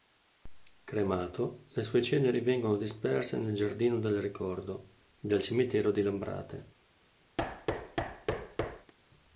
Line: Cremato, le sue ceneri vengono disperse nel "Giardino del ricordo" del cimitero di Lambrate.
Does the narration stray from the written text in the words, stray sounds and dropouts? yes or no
yes